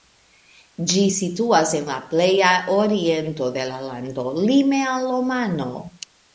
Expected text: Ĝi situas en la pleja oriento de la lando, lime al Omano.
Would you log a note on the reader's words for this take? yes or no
no